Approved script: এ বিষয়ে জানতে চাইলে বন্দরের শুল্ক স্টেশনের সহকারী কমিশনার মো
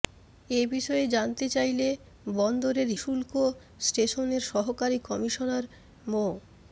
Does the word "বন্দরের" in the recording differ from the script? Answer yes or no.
no